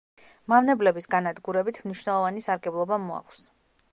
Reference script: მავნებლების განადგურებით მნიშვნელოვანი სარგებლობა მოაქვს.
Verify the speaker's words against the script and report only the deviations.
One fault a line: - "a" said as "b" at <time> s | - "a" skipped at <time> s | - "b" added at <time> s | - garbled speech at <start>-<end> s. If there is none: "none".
none